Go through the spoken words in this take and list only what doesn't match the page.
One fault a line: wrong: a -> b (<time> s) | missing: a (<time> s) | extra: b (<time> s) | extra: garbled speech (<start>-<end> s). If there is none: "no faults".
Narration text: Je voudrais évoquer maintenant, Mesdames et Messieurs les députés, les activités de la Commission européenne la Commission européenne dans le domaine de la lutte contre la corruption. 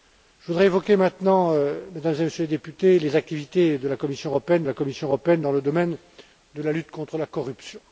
no faults